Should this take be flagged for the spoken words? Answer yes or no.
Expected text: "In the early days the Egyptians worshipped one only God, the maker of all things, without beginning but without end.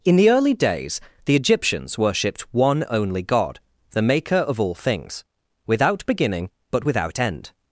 no